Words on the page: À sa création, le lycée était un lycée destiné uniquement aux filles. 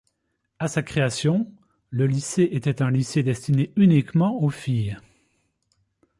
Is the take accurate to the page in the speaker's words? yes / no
yes